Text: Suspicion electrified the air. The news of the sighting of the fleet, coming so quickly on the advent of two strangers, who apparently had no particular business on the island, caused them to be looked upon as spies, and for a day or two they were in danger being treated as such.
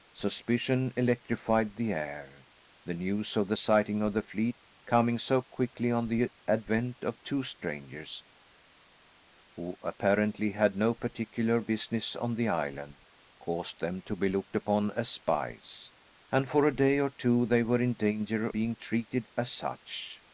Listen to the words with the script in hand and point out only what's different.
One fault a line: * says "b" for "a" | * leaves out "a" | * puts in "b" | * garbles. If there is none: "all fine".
all fine